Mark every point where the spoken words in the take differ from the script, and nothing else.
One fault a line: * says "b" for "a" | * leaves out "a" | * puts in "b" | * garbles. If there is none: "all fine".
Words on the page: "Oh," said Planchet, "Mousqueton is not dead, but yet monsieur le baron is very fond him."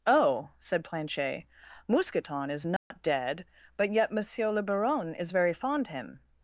all fine